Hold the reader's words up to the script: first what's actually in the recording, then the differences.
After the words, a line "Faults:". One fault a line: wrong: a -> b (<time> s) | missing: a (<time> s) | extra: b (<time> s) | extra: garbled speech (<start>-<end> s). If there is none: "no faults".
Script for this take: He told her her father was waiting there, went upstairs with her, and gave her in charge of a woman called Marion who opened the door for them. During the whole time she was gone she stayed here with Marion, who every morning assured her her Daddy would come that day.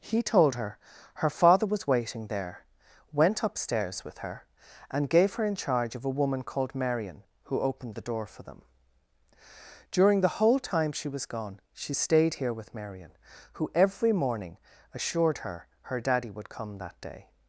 He told her her father was waiting there, went upstairs with her, and gave her in charge of a woman called Marion who opened the door for them. During the whole time she was gone she stayed here with Marion, who every morning assured her her Daddy would come that day.
Faults:
no faults